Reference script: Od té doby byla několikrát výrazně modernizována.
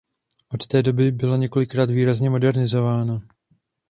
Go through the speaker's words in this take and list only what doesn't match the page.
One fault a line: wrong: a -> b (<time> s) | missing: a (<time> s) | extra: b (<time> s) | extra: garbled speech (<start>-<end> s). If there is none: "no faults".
no faults